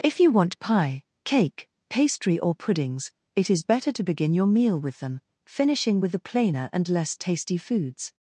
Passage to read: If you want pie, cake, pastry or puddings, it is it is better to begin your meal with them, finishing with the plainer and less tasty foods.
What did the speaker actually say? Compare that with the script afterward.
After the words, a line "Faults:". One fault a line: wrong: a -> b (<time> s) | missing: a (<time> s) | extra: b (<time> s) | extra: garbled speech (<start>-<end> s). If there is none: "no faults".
If you want pie, cake, pastry or puddings, it is better to begin your meal with them, finishing with the plainer and less tasty foods.
Faults:
missing: it is (3.6 s)